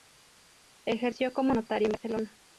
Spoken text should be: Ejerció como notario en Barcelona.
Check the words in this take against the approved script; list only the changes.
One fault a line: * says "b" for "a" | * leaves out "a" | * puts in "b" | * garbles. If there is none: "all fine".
all fine